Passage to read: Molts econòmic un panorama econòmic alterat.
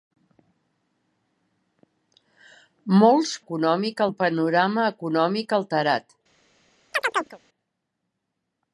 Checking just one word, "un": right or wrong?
right